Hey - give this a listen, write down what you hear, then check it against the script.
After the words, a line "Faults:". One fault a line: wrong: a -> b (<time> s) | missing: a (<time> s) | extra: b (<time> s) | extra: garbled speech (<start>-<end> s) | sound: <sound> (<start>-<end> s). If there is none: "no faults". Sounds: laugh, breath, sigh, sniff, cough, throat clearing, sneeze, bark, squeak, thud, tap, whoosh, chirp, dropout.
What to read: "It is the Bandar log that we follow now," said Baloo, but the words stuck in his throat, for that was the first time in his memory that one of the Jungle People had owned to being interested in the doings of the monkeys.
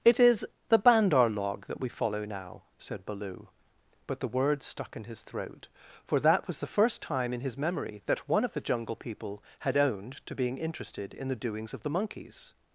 "It is the Bandar log that we follow now," said Baloo, but the words stuck in his throat, for that was the first time in his memory that one of the Jungle People had owned to being interested in the doings of the monkeys.
Faults:
no faults